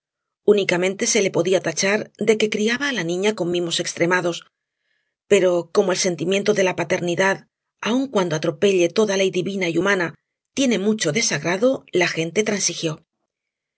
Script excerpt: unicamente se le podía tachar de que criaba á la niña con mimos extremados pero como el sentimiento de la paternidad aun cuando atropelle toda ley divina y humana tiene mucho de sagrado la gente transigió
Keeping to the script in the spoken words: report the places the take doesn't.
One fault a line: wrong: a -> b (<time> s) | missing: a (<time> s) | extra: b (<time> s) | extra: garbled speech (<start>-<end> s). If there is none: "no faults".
no faults